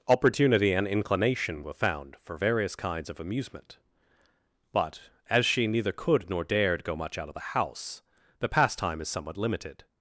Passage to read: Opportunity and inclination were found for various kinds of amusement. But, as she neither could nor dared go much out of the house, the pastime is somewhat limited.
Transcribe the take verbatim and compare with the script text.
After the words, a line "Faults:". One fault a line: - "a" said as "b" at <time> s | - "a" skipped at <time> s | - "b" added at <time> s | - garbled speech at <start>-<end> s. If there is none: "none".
Opportunity and inclination were found for various kinds of amusement. But, as she neither could nor dared go much out of the house, the pastime is somewhat limited.
Faults:
none